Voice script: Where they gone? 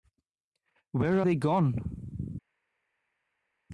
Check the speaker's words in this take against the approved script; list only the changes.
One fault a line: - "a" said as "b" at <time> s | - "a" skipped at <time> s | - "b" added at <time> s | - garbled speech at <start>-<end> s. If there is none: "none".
none